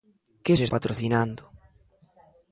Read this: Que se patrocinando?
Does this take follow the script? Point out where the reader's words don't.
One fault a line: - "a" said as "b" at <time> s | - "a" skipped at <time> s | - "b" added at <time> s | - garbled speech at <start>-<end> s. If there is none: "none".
none